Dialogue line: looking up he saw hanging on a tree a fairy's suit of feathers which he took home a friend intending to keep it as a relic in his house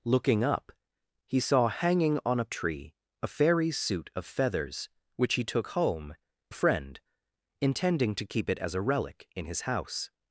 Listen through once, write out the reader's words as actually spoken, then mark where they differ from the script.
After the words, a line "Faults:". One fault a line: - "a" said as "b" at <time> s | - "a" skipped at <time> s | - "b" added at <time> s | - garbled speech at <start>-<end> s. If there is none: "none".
looking up he saw hanging on a tree a fairy's suit of feathers which he took home a friend intending to keep it as a relic in his house
Faults:
none